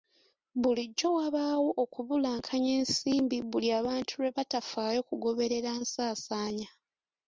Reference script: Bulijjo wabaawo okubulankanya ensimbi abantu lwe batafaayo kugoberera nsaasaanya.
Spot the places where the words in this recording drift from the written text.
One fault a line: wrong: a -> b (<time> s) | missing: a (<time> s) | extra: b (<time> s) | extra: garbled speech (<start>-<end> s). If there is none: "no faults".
extra: buli (3.5 s)